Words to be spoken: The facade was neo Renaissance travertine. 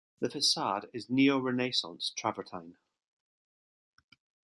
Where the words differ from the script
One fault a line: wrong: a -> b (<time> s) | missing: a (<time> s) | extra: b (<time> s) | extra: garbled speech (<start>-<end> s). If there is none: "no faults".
wrong: was -> is (0.9 s)